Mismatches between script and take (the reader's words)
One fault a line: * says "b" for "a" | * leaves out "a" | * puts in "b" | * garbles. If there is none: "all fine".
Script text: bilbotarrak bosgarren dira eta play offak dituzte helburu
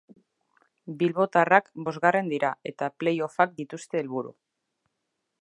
all fine